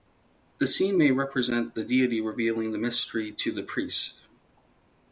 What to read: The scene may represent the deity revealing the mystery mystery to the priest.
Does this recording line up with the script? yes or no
no